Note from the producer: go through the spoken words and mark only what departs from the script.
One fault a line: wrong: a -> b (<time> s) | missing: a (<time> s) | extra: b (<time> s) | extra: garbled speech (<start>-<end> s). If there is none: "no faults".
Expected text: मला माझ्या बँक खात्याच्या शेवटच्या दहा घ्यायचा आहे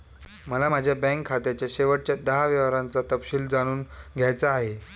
extra: व्यवहारांचा तपशील जाणून (2.5 s)